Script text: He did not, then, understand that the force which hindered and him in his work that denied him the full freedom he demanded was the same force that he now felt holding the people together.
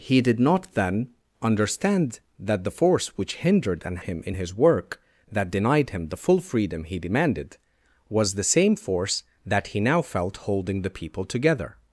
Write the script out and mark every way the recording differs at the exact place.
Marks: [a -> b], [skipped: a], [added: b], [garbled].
He did not, then, understand that the force which hindered and him in his work that denied him the full freedom he demanded was the same force that he now felt holding the people together.